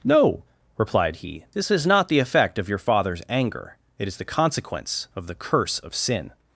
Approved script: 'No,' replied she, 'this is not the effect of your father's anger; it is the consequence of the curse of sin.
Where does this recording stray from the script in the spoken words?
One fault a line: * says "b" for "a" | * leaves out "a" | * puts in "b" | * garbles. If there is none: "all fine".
* says "he" for "she"